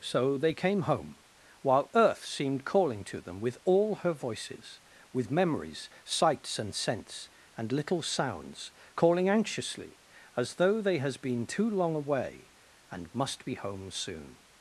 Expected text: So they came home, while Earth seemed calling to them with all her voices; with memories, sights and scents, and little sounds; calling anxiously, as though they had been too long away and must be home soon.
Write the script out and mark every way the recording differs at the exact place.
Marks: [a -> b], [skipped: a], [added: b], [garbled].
So they came home, while Earth seemed calling to them with all her voices; with memories, sights and scents, and little sounds; calling anxiously, as though they [had -> has] been too long away and must be home soon.